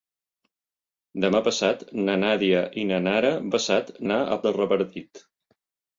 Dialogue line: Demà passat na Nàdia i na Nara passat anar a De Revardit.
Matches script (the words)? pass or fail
pass